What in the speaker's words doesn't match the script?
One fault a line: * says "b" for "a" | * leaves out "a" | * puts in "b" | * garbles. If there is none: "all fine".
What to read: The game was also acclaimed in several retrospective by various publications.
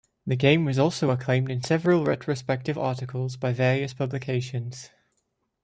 * puts in "articles"